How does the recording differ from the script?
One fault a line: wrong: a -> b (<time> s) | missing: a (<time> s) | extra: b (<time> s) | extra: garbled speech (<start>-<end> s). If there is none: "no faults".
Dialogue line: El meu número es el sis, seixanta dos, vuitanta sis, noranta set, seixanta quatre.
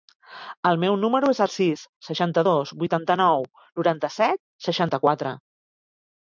wrong: sis -> nou (3.2 s)